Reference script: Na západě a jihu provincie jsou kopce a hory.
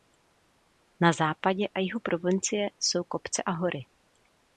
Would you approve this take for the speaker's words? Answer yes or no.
yes